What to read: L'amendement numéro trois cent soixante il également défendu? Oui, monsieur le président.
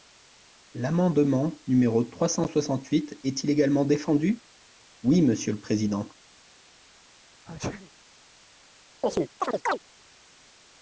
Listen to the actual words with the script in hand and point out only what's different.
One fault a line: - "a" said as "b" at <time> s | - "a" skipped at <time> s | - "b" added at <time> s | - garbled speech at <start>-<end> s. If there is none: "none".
- "huit est" added at 2.9 s